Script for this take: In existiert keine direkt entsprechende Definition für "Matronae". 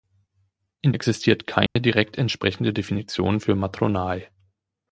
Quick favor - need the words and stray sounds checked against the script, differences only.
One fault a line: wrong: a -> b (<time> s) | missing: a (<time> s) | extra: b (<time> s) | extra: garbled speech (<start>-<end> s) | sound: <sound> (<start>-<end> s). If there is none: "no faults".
sound: dropout (1.7-1.8 s)